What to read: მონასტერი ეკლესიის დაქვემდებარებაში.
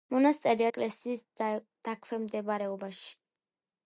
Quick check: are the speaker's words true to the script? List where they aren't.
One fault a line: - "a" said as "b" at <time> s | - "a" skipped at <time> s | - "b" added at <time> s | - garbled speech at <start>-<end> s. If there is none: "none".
none